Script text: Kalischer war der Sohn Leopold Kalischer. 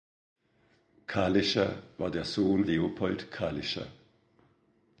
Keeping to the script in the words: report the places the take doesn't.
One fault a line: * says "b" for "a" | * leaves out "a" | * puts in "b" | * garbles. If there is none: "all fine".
all fine